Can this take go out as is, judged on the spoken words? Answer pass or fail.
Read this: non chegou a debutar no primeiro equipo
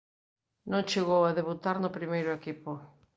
pass